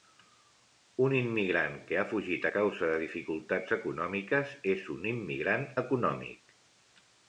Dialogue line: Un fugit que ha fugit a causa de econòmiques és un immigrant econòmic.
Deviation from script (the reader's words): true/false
true